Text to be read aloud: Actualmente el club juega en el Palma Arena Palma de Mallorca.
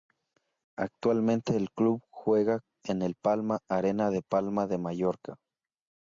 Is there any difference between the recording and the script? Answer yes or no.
yes